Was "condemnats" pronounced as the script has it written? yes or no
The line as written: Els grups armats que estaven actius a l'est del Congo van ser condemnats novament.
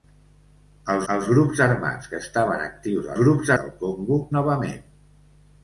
no